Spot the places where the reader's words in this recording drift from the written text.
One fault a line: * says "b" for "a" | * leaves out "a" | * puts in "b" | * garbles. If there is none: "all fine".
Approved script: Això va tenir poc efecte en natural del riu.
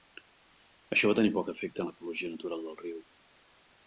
* puts in "l'ecologia"